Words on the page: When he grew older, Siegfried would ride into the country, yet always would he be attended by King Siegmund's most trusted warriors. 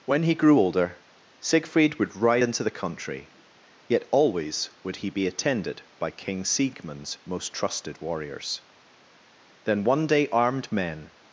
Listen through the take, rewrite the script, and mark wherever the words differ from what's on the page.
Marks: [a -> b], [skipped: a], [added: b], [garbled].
When he grew older, Siegfried would ride into the country, yet always would he be attended by King Siegmund's most trusted warriors. [added: Then one day armed men]